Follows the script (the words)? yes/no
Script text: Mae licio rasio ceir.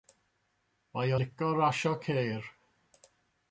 yes